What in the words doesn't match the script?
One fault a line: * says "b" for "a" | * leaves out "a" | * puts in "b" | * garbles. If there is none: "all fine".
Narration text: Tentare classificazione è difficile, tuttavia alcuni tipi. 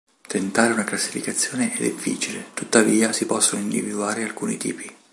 * puts in "una"
* puts in "si possono individuare"